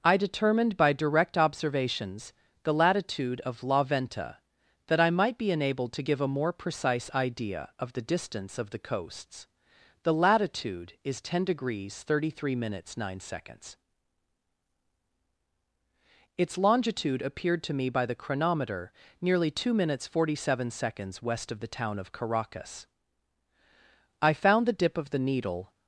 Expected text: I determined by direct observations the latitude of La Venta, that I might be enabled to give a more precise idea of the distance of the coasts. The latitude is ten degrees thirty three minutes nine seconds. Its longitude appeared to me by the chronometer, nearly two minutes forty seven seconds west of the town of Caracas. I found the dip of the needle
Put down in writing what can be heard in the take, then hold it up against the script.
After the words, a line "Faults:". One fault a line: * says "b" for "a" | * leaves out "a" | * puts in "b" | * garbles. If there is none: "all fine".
I determined by direct observations the latitude of La Venta, that I might be enabled to give a more precise idea of the distance of the coasts. The latitude is ten degrees thirty three minutes nine seconds. Its longitude appeared to me by the chronometer, nearly two minutes forty seven seconds west of the town of Caracas. I found the dip of the needle
Faults:
all fine